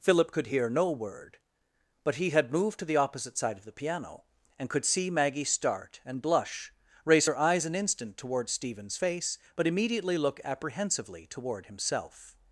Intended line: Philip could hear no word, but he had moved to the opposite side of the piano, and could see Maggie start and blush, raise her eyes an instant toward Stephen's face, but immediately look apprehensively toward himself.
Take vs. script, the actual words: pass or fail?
pass